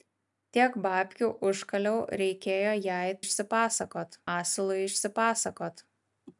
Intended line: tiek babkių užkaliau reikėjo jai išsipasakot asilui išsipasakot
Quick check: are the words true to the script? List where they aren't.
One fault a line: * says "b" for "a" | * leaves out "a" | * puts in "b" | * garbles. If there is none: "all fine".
all fine